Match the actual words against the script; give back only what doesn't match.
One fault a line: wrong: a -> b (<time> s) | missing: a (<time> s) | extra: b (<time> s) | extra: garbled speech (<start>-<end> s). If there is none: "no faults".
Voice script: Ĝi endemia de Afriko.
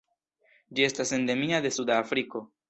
extra: estas (0.9 s)
extra: suda (1.8 s)